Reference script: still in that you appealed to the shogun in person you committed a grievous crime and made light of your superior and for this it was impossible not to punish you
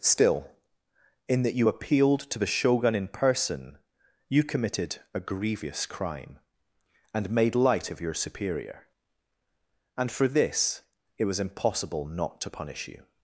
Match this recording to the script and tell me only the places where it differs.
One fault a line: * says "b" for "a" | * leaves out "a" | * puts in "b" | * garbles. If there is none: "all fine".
all fine